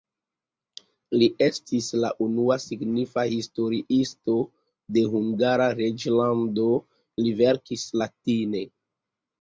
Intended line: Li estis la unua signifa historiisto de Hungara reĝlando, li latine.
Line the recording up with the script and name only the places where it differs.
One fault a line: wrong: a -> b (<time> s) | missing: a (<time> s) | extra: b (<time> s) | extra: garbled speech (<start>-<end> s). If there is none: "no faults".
extra: verkis (7.4 s)